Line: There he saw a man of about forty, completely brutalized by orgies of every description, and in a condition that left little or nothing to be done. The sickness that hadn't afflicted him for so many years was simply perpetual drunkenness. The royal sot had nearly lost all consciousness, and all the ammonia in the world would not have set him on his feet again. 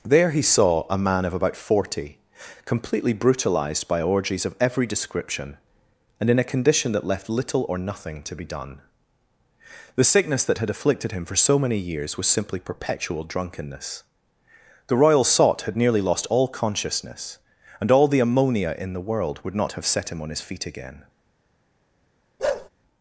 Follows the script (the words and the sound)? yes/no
no